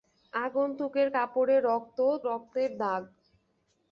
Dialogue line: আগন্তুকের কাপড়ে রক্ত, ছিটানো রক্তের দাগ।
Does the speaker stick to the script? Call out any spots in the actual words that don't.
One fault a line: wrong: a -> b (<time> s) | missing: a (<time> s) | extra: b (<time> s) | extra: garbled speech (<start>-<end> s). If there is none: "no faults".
missing: ছিটানো (2.0 s)